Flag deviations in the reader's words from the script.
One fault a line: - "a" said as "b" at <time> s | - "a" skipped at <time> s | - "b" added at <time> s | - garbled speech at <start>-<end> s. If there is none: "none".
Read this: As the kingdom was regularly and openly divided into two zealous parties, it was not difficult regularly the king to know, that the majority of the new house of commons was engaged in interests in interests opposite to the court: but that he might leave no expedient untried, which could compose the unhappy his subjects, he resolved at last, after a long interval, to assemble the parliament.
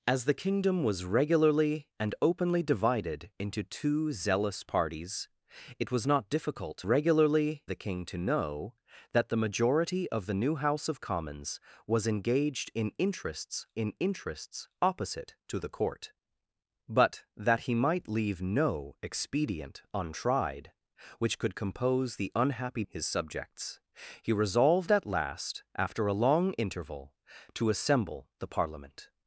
none